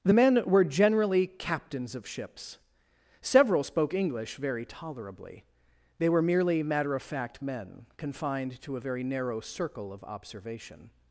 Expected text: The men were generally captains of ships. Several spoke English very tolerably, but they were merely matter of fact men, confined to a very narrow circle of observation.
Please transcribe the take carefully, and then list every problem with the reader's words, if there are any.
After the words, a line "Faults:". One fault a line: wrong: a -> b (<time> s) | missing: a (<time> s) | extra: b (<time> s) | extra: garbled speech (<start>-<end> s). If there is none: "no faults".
The men were generally captains of ships. Several spoke English very tolerably, they were merely matter of fact men, confined to a very narrow circle of observation.
Faults:
missing: but (5.4 s)